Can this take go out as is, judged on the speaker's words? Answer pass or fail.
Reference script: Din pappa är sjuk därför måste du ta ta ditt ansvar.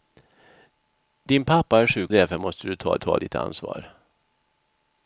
pass